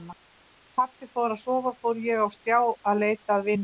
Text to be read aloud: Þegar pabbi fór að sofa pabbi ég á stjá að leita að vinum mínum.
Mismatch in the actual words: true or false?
true